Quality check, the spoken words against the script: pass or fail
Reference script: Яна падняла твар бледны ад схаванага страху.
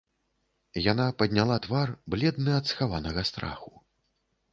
pass